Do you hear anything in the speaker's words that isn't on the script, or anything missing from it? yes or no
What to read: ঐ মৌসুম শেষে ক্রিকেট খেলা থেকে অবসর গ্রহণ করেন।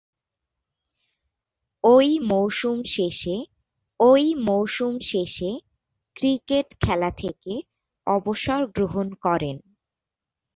yes